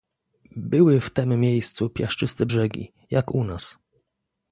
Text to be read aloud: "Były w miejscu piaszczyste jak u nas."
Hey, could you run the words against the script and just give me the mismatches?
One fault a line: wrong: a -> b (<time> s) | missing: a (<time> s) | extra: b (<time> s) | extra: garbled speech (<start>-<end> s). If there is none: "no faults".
extra: tem (1.1 s)
extra: brzegi (2.4 s)